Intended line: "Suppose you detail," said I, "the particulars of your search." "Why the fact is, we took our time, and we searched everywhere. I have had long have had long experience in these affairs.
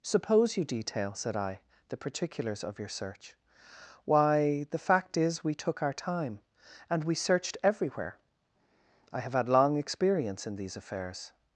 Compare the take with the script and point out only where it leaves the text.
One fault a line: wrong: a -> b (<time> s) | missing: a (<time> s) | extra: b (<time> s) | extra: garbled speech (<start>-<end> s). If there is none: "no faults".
missing: have had long (9.8 s)